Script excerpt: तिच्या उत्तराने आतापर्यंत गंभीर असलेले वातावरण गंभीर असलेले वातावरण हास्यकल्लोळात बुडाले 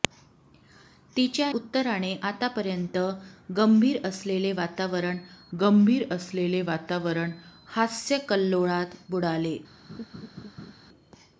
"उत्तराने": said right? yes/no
yes